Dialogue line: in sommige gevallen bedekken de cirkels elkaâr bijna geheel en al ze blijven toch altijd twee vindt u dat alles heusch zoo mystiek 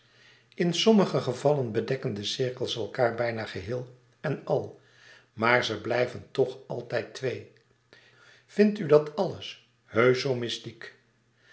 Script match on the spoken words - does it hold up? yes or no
no